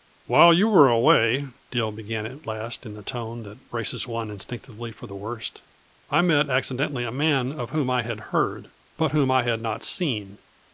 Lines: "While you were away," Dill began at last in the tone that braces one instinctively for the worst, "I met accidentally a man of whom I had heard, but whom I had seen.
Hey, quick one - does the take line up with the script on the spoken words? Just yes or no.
no